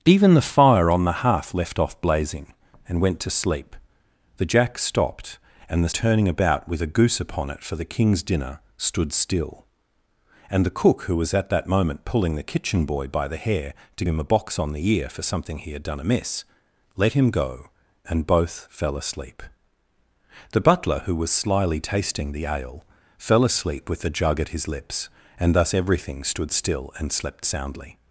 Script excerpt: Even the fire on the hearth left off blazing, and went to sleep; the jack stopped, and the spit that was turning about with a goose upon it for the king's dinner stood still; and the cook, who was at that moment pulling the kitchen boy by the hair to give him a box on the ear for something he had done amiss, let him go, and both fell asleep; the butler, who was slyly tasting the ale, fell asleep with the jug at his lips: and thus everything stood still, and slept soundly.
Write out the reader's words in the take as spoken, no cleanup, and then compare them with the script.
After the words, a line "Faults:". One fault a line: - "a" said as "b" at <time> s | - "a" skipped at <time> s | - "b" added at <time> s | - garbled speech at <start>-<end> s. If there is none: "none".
Even the fire on the hearth left off blazing, and went to sleep; the jack stopped, and the turning about with a goose upon it for the king's dinner stood still; and the cook, who was at that moment pulling the kitchen boy by the hair to him a box on the ear for something he had done amiss, let him go, and both fell asleep; the butler, who was slyly tasting the ale, fell asleep with the jug at his lips: and thus everything stood still, and slept soundly.
Faults:
- "spit that was" skipped at 6.0 s
- "give" skipped at 14.0 s